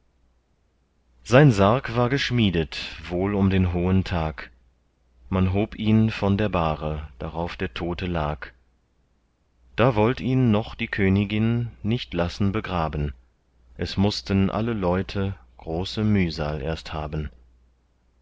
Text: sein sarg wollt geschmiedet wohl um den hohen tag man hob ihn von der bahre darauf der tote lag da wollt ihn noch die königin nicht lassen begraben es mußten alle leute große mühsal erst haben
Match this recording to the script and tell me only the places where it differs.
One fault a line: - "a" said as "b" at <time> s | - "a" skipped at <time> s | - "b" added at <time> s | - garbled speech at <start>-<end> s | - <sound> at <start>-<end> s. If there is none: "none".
- "wollt" said as "war" at 1.9 s